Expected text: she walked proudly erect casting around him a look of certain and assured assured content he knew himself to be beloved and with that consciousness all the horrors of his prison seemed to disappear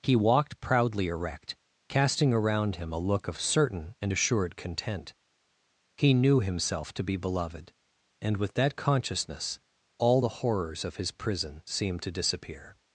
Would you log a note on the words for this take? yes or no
yes